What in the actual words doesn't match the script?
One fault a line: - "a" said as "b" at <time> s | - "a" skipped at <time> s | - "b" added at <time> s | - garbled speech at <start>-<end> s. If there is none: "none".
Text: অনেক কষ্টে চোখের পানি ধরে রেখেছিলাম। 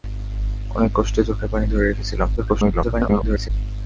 - garbled speech at 2.4-3.5 s